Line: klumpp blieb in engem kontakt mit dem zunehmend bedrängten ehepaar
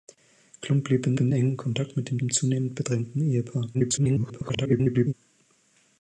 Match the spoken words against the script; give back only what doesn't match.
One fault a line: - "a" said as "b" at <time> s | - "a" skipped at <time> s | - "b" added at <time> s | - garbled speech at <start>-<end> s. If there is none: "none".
- "in" added at 1.2 s
- "dem" added at 2.2 s
- garbled speech at 3.7-5.1 s